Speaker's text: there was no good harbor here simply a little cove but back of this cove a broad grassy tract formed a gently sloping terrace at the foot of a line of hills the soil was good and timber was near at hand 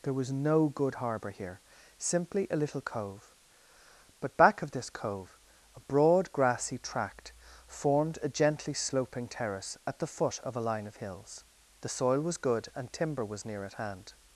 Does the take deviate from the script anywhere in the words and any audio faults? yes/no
no